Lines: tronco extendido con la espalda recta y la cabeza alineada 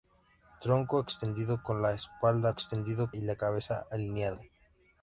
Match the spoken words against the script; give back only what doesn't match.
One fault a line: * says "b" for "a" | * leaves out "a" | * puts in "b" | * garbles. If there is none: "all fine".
* says "extendido" for "recta"